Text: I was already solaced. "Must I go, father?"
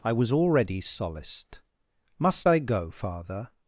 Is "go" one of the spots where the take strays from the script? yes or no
no